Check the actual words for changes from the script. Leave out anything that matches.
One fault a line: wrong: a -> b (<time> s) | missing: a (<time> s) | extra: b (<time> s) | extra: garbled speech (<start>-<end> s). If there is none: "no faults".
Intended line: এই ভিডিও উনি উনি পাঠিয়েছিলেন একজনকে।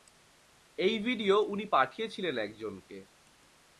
missing: উনি (1.6 s)